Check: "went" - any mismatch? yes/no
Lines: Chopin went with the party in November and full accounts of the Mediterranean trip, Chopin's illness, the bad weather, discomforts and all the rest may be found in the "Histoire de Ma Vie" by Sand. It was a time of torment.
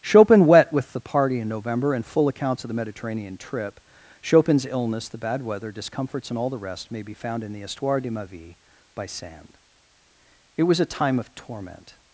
yes